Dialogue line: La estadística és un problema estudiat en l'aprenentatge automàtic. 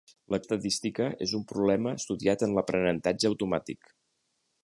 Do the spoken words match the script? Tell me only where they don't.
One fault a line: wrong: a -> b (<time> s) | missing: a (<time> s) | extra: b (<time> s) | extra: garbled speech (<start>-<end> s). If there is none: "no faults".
no faults